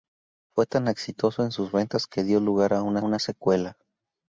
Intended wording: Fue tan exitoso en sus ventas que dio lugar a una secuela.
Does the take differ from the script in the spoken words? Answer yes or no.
yes